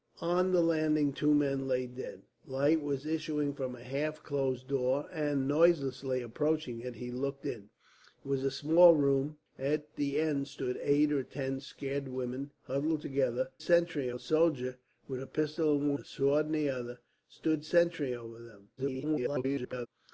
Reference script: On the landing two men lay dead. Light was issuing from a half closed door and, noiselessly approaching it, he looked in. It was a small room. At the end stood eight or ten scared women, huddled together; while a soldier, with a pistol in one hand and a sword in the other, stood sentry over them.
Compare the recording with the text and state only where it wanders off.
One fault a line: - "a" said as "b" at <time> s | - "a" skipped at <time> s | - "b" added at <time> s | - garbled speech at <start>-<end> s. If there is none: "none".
- "while" said as "sentry" at 13.6 s
- "one hand and" skipped at 15.9 s
- garbled speech at 18.8-19.9 s